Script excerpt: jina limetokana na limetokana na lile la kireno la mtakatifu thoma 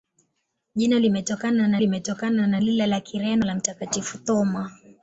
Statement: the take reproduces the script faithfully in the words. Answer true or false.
true